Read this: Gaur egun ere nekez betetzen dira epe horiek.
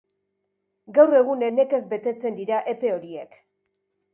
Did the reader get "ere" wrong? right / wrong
wrong